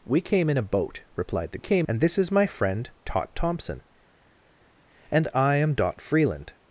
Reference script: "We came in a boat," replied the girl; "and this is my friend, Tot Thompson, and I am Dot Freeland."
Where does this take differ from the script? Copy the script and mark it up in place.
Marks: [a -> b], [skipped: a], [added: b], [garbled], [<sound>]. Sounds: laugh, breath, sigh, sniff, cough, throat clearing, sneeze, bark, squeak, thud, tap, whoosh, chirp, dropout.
"We came in a boat," replied the [girl; -> came] "and this is my friend, Tot Thompson, and I am Dot Freeland."